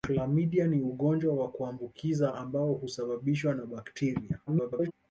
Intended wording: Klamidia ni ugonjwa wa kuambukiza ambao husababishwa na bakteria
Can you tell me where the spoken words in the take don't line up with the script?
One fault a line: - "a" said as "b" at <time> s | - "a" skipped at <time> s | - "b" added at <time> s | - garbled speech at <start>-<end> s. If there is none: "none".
- garbled speech at 4.5-4.9 s